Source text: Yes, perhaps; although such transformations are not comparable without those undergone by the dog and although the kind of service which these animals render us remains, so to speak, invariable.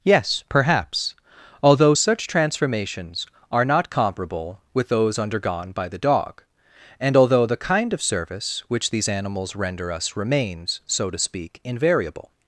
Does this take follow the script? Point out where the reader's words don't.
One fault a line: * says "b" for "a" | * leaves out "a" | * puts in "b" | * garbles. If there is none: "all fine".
* says "with" for "without"